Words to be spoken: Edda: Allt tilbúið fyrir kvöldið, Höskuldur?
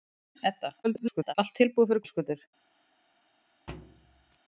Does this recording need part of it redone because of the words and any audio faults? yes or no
yes